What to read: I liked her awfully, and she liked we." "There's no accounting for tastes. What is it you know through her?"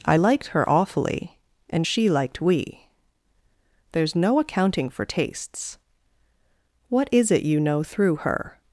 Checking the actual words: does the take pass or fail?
pass